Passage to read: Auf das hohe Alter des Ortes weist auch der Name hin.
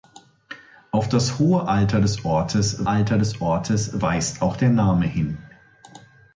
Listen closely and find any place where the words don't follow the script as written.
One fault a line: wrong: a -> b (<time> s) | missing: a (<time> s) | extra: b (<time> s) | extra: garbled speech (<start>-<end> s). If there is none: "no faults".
extra: Alter des Ortes (2.9 s)